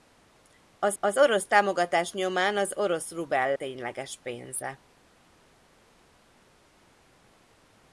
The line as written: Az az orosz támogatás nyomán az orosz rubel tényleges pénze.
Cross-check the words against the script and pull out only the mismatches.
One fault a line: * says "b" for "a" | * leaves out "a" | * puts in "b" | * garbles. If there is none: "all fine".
all fine